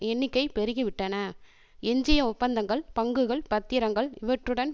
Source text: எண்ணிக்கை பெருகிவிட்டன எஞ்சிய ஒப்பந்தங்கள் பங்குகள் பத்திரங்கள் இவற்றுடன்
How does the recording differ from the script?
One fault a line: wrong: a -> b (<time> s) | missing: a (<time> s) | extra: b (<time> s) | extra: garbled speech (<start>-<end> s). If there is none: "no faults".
no faults